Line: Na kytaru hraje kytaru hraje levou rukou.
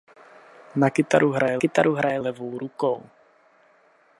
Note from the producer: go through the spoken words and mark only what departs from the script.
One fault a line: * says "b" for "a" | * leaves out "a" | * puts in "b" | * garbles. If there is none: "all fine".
all fine